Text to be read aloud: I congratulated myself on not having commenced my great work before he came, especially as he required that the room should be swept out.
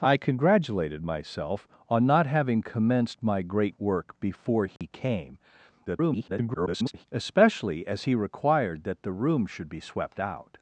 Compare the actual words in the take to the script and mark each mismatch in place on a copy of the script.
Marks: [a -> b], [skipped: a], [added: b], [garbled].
I congratulated myself on not having commenced my great work before he came, [garbled] especially as he required that the room should be swept out.